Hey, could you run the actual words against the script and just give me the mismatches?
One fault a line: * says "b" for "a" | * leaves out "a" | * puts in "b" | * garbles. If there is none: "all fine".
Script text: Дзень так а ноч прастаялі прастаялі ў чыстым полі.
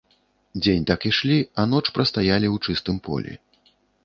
* puts in "ішлі"
* leaves out "прастаялі"